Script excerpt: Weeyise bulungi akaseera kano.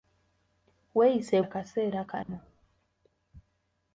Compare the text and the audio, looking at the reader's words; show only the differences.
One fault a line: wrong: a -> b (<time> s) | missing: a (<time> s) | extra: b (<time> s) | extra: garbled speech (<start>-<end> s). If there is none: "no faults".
missing: bulungi (1.4 s)